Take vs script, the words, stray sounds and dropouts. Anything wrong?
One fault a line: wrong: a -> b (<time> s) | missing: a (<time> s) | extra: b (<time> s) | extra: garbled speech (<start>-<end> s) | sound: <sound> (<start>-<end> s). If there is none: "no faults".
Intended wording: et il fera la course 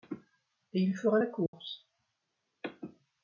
sound: dropout (1.5-1.5 s)